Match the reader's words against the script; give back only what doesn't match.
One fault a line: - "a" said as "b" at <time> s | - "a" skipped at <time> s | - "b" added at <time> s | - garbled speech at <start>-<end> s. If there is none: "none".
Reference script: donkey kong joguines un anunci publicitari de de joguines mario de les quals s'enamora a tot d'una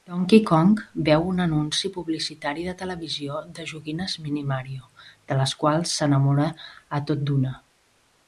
- "joguines" said as "veu" at 1.1 s
- "televisió" added at 2.8 s
- "mini" added at 4.2 s